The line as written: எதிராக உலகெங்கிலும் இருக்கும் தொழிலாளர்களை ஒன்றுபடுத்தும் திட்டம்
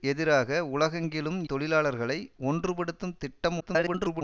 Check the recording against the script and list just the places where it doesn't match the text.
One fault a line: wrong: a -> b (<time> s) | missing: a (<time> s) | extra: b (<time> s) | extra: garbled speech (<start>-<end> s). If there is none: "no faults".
missing: இருக்கும் (1.4 s)
extra: garbled speech (3.6-4.2 s)